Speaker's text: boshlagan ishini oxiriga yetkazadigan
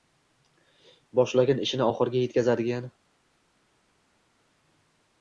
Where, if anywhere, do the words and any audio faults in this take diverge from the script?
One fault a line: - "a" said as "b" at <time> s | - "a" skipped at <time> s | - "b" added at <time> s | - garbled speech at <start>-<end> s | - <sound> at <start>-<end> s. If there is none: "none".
none